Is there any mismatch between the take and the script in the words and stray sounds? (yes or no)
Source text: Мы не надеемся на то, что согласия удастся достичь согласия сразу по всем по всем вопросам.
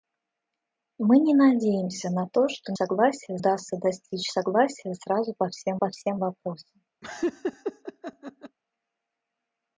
yes